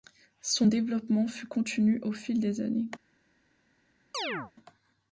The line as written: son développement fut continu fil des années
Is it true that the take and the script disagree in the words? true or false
true